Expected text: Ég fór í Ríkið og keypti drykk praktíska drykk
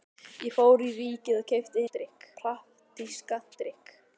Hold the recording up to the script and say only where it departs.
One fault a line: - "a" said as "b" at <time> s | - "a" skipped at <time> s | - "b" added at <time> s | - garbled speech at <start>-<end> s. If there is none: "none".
none